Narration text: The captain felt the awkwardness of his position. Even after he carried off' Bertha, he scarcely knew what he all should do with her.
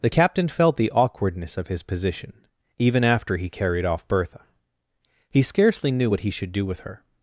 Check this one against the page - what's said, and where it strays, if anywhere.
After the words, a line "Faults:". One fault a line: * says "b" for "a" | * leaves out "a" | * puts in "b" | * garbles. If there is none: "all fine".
The captain felt the awkwardness of his position. Even after he carried off' Bertha, he scarcely knew what he should do with her.
Faults:
* leaves out "all"